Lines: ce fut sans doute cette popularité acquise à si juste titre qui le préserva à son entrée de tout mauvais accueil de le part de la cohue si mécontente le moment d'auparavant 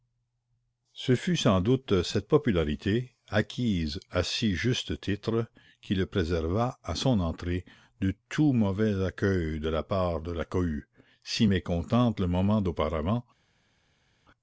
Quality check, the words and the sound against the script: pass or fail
fail